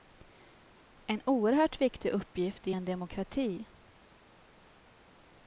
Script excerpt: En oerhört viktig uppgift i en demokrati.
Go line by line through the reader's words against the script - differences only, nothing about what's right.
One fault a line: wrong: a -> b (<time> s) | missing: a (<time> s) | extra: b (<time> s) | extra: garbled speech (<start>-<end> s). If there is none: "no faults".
no faults